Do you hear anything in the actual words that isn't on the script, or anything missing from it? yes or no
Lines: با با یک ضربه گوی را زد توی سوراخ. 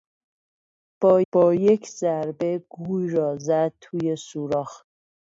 no